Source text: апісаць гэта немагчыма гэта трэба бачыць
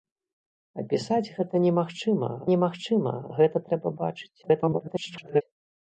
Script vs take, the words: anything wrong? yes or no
yes